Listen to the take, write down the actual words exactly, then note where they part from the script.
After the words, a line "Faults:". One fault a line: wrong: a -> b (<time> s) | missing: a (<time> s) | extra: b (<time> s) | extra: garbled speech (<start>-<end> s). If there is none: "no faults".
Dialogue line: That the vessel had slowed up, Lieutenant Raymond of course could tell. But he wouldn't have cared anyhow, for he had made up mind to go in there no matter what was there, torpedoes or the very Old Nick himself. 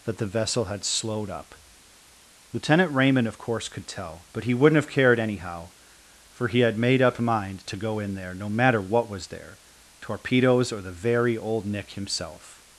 That the vessel had slowed up, Lieutenant Raymond of course could tell. But he wouldn't have cared anyhow, for he had made up mind to go in there no matter what was there, torpedoes or the very Old Nick himself.
Faults:
no faults